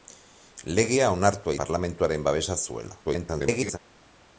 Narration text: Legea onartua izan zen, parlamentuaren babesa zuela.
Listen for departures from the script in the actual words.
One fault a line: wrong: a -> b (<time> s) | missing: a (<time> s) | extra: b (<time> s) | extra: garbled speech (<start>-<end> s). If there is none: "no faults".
missing: izan zen (1.6 s)
extra: garbled speech (3.0-3.8 s)